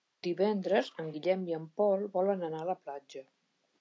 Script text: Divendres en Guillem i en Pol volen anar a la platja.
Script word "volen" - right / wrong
right